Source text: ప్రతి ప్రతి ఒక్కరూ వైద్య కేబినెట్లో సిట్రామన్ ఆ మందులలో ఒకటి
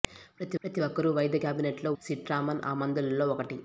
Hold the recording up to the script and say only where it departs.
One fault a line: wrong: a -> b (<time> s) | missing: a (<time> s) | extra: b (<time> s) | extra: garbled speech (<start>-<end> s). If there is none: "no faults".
no faults